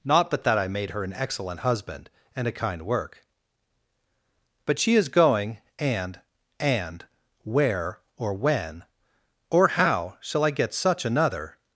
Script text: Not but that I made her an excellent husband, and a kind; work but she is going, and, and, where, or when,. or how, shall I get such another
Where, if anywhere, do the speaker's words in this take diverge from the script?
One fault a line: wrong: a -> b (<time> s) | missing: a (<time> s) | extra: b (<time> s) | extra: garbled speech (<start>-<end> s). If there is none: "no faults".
no faults